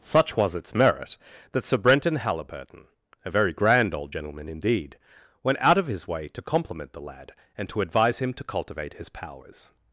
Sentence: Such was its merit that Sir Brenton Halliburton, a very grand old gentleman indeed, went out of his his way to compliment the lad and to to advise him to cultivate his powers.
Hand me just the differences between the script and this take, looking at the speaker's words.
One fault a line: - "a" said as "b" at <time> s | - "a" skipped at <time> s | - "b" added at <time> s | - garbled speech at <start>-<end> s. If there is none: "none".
- "his" skipped at 6.1 s
- "to" skipped at 7.8 s